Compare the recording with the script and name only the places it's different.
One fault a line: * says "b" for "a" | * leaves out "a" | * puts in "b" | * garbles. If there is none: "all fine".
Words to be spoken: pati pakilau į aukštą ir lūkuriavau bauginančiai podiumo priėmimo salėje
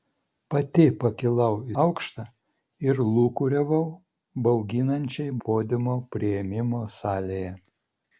all fine